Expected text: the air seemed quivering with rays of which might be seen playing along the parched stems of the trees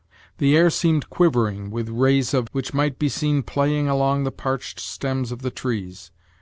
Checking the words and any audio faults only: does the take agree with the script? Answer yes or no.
yes